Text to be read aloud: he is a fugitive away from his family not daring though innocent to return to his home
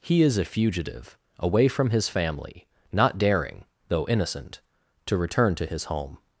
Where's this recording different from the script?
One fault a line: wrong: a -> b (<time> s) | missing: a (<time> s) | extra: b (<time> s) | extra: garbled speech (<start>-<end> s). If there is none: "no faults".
no faults